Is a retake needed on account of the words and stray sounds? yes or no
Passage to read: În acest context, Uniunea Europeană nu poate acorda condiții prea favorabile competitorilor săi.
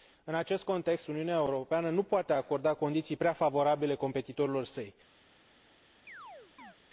yes